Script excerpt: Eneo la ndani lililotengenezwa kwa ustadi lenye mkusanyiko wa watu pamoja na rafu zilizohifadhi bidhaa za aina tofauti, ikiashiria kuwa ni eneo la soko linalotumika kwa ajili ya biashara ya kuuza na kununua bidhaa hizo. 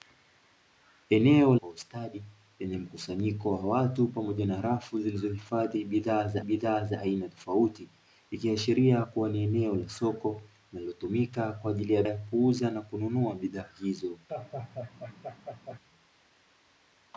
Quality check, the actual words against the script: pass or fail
fail